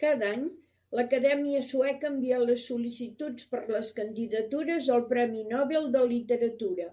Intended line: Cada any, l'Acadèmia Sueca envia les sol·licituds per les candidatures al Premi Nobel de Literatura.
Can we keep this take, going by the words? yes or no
yes